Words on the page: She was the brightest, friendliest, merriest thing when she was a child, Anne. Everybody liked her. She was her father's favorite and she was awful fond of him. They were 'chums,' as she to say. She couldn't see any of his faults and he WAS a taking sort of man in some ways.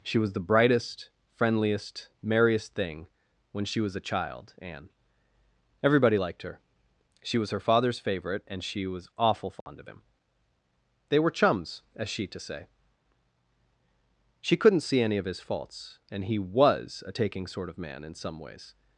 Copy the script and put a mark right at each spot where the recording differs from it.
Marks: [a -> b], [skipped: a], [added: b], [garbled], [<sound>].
She was the brightest, friendliest, merriest thing when she was a child, Anne. Everybody liked her. She was her father's favorite and she was awful fond [dropout] of him. They were 'chums,' as she to say. She couldn't see any of his faults and he WAS a taking sort of man in some ways.